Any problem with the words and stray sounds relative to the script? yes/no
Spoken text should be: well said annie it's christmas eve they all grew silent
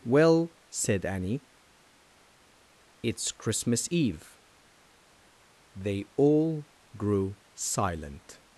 no